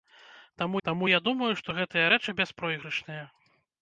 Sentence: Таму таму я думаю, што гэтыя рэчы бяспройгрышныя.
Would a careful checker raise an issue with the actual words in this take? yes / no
no